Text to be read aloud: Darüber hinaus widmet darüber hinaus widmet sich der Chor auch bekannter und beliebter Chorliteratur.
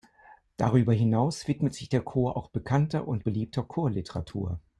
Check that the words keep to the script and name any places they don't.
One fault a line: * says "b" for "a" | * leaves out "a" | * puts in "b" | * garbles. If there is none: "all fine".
* leaves out "darüber hinaus widmet"